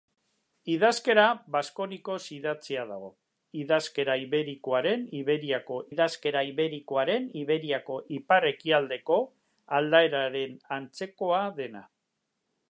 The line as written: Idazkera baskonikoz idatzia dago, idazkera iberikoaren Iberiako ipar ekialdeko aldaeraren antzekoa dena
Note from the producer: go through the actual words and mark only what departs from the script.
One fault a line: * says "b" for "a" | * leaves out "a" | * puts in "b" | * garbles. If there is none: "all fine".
* puts in "idazkera iberikoaren Iberiako"